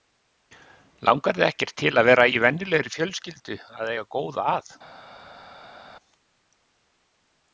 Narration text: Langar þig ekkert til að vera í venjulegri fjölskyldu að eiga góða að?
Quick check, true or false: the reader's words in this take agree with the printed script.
true